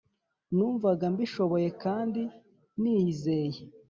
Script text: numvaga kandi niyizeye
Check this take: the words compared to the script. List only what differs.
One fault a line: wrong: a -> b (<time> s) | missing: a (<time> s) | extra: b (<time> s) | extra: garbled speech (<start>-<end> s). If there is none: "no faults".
extra: mbishoboye (1.1 s)